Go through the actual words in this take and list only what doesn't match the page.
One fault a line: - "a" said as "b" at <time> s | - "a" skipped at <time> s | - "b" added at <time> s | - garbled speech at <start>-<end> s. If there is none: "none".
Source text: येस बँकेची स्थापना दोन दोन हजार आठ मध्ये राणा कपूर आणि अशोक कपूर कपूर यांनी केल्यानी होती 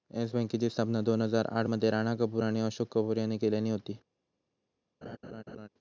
- "दोन" skipped at 1.2 s
- "कपूर" skipped at 3.2 s